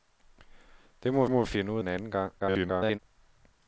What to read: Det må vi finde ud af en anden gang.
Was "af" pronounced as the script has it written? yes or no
no